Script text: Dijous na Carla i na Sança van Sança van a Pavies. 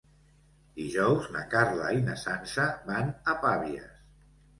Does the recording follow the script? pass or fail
fail